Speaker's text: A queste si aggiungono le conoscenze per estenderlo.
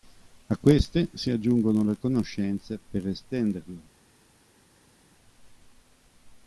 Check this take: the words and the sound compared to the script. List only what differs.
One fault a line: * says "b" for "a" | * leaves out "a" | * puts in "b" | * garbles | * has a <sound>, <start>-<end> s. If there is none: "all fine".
all fine